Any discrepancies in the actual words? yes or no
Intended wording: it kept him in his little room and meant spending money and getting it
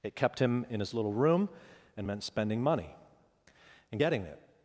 no